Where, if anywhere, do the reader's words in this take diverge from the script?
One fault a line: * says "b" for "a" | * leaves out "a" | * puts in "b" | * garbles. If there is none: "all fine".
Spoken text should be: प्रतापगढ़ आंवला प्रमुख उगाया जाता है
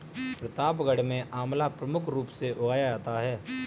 * puts in "में"
* puts in "रूप से"